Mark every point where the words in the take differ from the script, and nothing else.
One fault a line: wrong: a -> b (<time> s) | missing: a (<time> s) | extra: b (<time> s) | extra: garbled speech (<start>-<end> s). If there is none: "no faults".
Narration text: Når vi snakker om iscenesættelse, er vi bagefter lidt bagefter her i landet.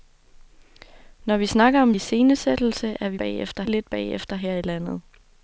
no faults